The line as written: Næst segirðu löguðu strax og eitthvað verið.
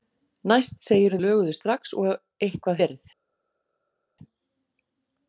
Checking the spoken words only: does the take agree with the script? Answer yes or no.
yes